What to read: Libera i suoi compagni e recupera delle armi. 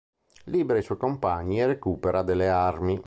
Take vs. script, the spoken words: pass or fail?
pass